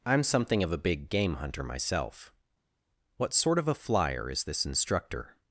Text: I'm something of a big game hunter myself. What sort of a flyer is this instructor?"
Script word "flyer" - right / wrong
right